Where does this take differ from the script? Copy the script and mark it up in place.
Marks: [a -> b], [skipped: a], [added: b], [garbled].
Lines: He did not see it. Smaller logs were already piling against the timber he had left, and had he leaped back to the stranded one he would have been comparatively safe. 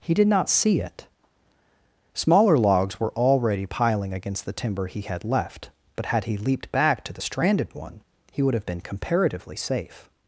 He did not see it. Smaller logs were already piling against the timber he had left, [and -> but] had he leaped back to the stranded one he would have been comparatively safe.